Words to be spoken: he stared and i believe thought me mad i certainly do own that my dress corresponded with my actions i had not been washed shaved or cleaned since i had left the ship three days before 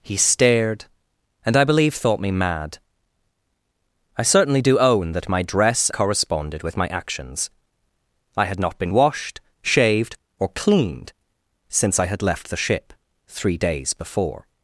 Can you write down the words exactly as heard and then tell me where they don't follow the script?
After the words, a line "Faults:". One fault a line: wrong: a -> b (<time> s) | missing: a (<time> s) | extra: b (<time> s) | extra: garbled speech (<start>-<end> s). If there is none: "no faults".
he stared and i believe thought me mad i certainly do own that my dress corresponded with my actions i had not been washed shaved or cleaned since i had left the ship three days before
Faults:
no faults